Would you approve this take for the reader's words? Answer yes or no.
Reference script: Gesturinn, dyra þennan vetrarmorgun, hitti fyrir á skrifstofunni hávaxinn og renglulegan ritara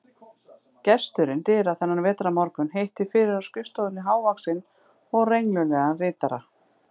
yes